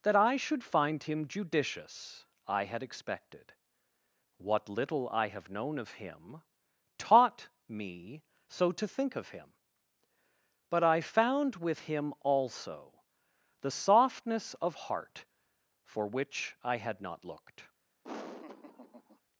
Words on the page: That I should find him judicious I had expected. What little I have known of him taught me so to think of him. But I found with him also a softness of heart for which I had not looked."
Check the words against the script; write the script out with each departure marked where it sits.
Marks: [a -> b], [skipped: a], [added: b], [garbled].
That I should find him judicious I had expected. What little I have known of him taught me so to think of him. But I found with him also [a -> the] softness of heart for which I had not looked."